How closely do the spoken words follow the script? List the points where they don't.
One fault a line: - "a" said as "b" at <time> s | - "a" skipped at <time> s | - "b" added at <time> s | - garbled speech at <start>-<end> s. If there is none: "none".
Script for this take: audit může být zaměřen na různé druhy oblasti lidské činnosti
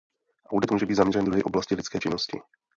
- "na různé" skipped at 1.2 s